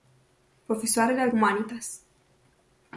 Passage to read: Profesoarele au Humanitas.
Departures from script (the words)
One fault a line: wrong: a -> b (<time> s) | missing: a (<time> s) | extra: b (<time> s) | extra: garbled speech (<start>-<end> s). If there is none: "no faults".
no faults